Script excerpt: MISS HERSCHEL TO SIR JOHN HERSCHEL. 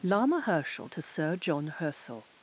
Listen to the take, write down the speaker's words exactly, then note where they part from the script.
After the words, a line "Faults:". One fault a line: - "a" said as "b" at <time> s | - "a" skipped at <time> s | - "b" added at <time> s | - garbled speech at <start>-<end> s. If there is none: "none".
Lama HERSCHEL TO SIR JOHN HERSCHEL.
Faults:
- "MISS" said as "Lama" at 0.0 s